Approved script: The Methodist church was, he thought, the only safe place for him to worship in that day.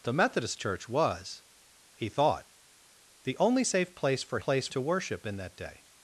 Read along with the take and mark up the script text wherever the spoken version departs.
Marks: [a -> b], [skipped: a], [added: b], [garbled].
The Methodist church was, he thought, the only safe place for [him -> place] to worship in that day.